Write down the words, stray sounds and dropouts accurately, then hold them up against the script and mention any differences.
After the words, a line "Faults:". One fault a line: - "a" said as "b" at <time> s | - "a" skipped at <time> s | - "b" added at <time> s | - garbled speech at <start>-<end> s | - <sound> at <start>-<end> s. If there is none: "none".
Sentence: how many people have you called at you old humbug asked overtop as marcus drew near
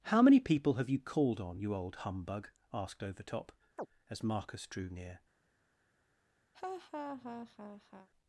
how many people have you called on you old humbug asked overtop as marcus drew near
Faults:
- "at" said as "on" at 1.4 s
- chirp at 3.8-3.9 s
- laugh at 6.5-8.1 s